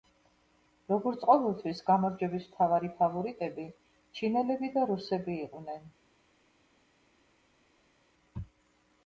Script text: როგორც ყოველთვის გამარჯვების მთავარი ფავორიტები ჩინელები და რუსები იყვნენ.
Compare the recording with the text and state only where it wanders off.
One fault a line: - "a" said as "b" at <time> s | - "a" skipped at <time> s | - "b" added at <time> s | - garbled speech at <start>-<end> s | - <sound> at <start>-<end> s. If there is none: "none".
none